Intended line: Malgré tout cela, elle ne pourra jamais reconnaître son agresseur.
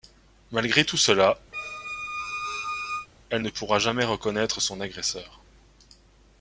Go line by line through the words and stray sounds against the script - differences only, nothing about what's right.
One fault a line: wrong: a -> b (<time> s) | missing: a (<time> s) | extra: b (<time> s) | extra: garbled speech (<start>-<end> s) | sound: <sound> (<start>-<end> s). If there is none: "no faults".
sound: squeak (1.5-3.1 s)